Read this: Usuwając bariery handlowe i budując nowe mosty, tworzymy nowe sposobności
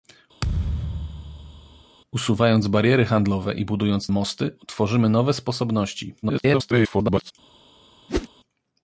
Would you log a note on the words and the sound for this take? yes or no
yes